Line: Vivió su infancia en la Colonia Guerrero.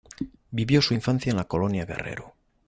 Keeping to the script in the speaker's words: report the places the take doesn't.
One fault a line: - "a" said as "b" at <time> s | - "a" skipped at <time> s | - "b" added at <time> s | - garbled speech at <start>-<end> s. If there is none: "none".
none